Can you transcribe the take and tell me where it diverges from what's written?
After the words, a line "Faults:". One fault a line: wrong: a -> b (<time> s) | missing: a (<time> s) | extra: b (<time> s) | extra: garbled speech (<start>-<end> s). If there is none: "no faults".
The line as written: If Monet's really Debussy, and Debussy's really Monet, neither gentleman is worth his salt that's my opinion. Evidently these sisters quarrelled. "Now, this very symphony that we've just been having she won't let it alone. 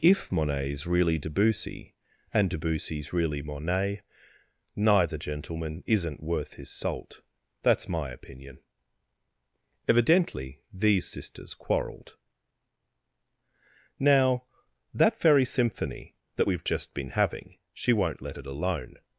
If Monet's really Debussy, and Debussy's really Monet, neither gentleman isn't worth his salt that's my opinion. Evidently these sisters quarrelled. "Now, that very symphony that we've just been having she won't let it alone.
Faults:
wrong: is -> isn't (5.9 s)
wrong: this -> that (14.9 s)